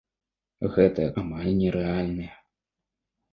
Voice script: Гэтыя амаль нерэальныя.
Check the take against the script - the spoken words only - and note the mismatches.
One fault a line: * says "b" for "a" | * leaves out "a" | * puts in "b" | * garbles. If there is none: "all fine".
all fine